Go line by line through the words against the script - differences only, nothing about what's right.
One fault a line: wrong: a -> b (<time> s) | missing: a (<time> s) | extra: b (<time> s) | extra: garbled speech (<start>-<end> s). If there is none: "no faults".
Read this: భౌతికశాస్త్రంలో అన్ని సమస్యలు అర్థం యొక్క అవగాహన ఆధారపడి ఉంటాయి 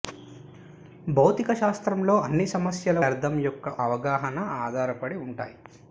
no faults